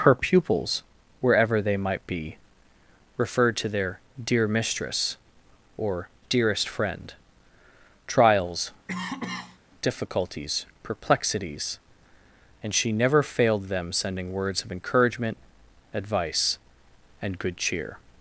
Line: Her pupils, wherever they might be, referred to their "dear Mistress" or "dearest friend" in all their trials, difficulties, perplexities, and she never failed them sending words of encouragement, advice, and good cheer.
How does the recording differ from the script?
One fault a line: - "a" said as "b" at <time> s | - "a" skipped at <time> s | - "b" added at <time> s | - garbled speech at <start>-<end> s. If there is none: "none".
- "in all their" skipped at 7.1 s